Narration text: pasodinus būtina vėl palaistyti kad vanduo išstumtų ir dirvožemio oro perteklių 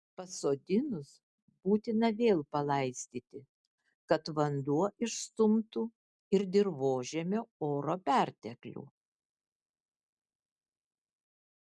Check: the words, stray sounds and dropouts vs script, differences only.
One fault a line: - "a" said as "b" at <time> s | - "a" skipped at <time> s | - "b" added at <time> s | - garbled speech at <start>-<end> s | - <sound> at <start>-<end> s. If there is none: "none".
none